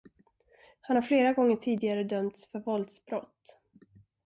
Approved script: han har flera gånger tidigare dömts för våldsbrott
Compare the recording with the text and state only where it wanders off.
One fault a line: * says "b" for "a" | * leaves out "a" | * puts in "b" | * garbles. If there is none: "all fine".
all fine